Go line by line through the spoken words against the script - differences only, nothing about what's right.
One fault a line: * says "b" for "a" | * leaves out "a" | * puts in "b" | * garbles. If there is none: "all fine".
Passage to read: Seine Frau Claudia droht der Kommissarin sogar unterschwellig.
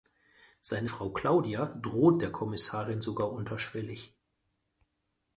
all fine